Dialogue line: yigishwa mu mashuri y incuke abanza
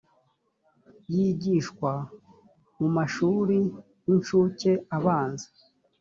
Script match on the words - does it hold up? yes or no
yes